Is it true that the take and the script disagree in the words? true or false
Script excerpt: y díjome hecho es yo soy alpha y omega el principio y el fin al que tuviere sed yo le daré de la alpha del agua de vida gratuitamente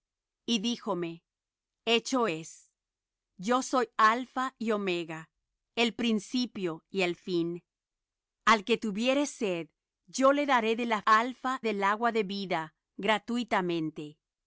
false